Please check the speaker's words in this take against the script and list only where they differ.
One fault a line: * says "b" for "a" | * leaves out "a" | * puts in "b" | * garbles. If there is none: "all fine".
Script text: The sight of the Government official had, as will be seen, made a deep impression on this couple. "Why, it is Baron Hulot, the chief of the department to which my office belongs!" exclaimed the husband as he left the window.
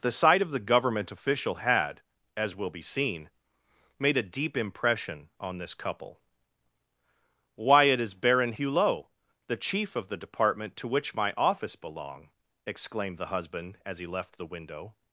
* says "belong" for "belongs"